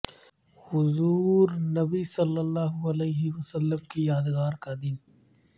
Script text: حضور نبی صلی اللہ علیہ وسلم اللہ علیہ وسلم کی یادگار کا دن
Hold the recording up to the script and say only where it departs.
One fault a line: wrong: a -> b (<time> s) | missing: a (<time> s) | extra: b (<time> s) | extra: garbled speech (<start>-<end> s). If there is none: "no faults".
missing: اللہ علیہ وسلم (3.8 s)